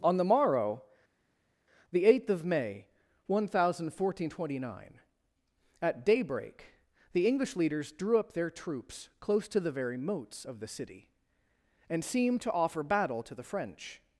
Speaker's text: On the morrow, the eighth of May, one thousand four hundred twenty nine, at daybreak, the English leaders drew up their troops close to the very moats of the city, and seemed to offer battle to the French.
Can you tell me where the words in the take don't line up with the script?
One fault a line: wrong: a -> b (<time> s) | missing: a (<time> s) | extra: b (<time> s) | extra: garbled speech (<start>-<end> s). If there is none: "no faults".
no faults